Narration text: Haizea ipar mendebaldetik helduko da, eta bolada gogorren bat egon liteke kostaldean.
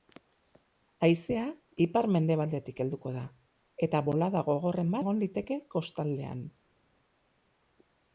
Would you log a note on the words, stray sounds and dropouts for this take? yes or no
yes